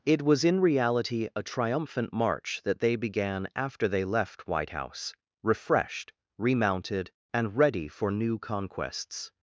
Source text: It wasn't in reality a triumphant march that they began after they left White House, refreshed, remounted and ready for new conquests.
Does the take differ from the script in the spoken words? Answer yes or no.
yes